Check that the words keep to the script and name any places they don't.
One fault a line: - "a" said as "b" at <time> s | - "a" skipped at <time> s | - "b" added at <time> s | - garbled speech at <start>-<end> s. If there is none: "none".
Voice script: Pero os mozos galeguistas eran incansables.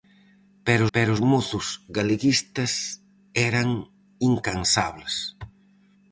- "pero" added at 0.9 s